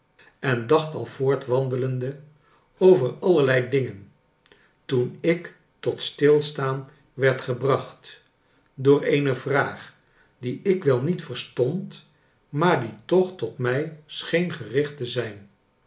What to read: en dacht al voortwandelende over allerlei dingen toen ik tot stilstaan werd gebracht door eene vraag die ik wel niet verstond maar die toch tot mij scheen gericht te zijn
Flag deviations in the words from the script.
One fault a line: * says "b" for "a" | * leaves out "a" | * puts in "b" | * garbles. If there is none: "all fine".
all fine